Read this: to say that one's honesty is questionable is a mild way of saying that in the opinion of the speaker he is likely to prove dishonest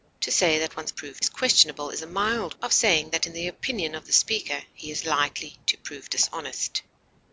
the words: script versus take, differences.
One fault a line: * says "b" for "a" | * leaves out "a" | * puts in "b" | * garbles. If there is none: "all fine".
* says "prove" for "honesty"
* leaves out "way"